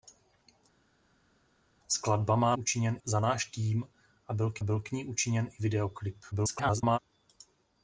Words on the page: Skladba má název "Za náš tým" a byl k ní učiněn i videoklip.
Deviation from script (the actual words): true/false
true